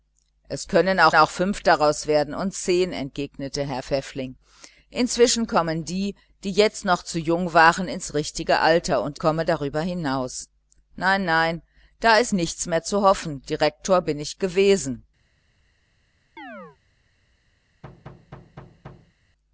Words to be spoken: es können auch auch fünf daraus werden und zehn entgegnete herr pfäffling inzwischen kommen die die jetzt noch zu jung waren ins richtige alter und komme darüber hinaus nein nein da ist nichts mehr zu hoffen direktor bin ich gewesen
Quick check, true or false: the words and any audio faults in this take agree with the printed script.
false